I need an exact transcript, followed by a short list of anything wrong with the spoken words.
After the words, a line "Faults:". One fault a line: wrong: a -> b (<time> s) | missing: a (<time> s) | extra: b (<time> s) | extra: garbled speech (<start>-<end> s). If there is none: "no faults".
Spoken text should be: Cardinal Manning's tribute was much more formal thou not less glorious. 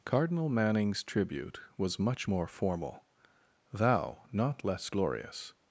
Cardinal Manning's tribute was much more formal thou not less glorious.
Faults:
no faults